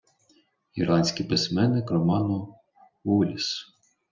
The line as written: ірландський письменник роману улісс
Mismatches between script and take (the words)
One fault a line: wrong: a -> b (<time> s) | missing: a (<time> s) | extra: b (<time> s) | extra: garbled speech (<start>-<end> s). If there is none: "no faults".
no faults